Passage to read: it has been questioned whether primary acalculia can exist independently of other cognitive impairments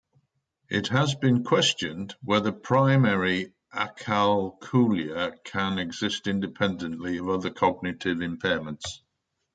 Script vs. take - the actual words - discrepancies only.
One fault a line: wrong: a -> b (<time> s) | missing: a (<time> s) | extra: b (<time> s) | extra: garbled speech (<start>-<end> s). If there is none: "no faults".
no faults